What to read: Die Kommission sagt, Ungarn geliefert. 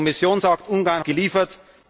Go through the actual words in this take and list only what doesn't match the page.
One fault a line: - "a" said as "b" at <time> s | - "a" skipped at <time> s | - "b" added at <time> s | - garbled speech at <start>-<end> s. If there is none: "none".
none